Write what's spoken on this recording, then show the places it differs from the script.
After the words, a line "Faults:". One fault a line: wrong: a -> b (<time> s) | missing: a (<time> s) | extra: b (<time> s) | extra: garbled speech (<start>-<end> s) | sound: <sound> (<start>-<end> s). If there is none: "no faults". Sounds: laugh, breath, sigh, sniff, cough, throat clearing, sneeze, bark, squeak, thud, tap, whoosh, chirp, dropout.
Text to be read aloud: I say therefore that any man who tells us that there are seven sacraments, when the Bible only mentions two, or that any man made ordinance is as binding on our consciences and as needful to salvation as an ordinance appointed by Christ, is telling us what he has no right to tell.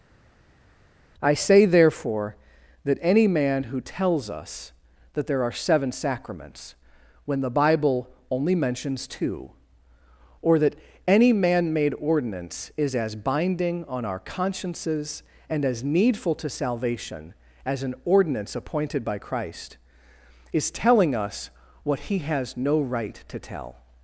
I say therefore that any man who tells us that there are seven sacraments, when the Bible only mentions two, or that any man made ordinance is as binding on our consciences and as needful to salvation as an ordinance appointed by Christ, is telling us what he has no right to tell.
Faults:
no faults